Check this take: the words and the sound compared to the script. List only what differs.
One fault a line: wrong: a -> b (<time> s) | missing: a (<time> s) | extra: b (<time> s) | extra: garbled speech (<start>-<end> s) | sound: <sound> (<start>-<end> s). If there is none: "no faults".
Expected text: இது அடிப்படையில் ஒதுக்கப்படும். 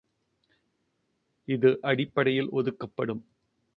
no faults